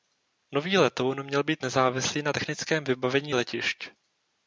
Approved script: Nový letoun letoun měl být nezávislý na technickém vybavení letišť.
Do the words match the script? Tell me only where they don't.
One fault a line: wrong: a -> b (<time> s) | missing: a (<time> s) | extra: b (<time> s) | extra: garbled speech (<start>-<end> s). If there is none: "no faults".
missing: letoun (1.2 s)